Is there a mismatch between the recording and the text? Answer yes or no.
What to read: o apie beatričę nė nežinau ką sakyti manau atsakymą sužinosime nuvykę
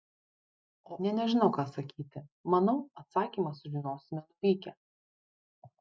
yes